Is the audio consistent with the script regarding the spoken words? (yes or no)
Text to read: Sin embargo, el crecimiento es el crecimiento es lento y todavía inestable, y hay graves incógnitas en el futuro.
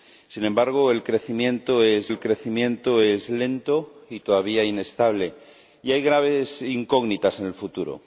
yes